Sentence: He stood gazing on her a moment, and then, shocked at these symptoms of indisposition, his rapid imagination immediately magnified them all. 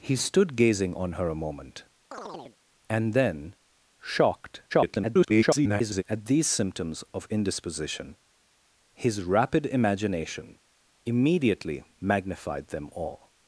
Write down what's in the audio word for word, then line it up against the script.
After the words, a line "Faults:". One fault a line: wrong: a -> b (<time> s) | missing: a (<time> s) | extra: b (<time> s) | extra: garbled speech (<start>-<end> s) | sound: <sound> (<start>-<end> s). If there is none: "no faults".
He stood gazing on her a moment, and then, shocked [garbled] at these symptoms of indisposition, his rapid imagination immediately magnified them all.
Faults:
sound: chirp (2.1-2.6 s)
extra: garbled speech (4.7-6.0 s)